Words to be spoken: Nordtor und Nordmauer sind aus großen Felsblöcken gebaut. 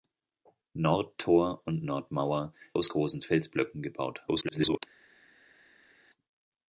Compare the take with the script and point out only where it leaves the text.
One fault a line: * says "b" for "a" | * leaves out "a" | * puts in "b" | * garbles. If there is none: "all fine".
* leaves out "sind"
* garbles